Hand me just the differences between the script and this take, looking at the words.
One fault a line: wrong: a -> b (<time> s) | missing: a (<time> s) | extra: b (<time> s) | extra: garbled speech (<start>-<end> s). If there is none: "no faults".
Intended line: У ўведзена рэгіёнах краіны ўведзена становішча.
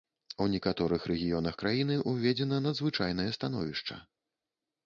wrong: ўведзена -> некаторых (0.5 s)
extra: надзвычайнае (2.7 s)